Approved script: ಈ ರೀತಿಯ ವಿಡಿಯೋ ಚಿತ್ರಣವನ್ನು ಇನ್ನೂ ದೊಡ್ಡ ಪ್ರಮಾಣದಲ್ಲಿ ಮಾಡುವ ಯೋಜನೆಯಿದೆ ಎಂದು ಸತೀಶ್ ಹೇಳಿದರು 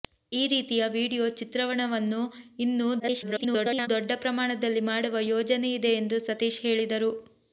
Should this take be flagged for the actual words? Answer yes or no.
yes